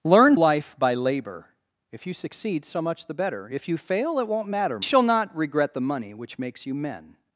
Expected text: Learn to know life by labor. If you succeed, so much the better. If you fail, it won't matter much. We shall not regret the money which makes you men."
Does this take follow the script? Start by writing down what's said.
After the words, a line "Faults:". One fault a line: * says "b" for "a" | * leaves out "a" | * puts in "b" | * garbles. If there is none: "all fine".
Learn life by labor. If you succeed, so much the better. If you fail, it won't matter shall not regret the money which makes you men."
Faults:
* leaves out "to know"
* leaves out "much We"